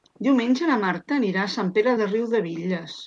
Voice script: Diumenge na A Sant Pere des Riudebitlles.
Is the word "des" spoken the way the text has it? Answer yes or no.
no